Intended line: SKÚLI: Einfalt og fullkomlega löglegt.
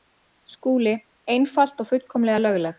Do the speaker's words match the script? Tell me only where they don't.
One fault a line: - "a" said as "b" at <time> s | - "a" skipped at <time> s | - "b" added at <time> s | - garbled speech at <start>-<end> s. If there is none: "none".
none